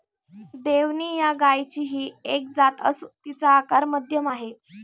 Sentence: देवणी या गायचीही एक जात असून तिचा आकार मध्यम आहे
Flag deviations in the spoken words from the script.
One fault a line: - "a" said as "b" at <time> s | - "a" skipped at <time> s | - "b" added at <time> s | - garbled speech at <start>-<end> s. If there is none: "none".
none